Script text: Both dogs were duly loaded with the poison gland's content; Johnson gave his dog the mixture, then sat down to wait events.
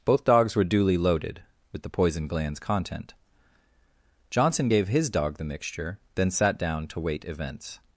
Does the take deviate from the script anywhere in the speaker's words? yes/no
no